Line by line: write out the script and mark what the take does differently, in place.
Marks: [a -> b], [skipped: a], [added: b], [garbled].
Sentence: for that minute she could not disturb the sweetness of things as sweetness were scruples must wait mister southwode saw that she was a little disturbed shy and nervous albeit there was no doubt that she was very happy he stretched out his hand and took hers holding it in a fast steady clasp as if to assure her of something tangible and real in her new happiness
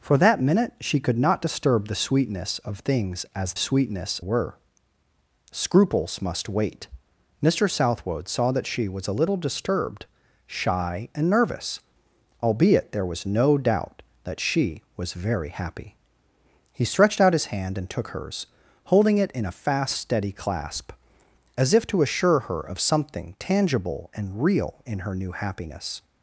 for that minute she could not disturb the sweetness of things as sweetness were scruples must wait mister southwode saw that she was a little disturbed shy and nervous albeit there was no doubt that she was very happy he stretched out his hand and took hers holding it in a fast steady clasp as if to assure her of something tangible and real in her new happiness